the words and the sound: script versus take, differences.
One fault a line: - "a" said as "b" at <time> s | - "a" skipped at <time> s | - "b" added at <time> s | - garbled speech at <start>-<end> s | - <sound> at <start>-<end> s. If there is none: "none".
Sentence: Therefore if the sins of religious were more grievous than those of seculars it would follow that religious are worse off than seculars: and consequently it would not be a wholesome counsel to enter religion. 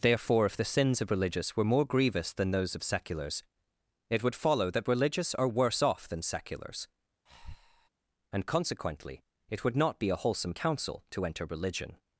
- breath at 7.3-7.9 s